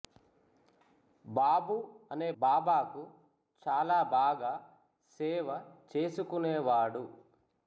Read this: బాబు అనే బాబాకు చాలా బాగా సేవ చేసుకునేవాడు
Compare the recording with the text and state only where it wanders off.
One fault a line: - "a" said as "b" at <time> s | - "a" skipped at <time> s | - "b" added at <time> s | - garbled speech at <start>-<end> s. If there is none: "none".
none